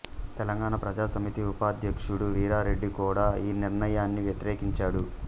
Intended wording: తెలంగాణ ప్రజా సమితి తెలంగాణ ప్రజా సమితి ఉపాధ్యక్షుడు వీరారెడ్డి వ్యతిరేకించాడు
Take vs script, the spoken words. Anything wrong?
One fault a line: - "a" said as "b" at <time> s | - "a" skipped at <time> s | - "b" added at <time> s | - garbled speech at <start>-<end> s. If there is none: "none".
- "తెలంగాణ ప్రజా సమితి ఉపాధ్యక్షుడు వీరారెడ్డి" said as "ఉపాధ్యక్షుడు వీరారెడ్డి కూడా ఈ నిర్ణయాన్ని" at 1.5 s